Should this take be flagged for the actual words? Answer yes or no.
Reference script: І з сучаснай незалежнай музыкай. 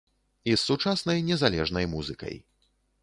no